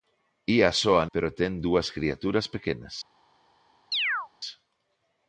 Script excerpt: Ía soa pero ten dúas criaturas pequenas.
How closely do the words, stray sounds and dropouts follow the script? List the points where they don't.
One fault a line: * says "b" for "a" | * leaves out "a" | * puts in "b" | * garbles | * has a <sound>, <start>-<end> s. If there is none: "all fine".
* has a chirp, 3.9-4.3 s